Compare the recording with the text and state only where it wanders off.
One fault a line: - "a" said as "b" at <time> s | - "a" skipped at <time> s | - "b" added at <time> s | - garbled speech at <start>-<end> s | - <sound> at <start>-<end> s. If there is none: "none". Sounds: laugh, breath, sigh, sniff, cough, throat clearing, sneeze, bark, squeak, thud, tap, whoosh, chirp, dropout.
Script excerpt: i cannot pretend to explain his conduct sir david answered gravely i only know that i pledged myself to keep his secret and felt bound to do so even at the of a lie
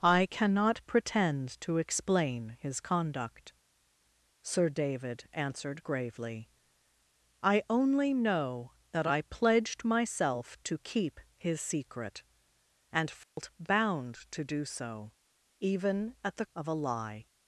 - dropout at 13.2-13.4 s